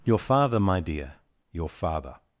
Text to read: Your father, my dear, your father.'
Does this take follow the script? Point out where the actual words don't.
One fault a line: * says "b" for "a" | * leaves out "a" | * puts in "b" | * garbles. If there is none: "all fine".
all fine